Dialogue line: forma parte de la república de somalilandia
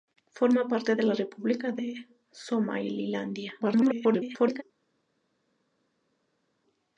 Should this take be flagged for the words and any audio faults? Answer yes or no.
yes